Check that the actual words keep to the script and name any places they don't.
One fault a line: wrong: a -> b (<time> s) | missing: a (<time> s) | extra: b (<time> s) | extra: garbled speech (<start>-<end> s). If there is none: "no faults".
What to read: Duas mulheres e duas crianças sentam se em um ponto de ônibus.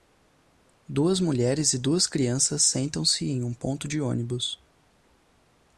no faults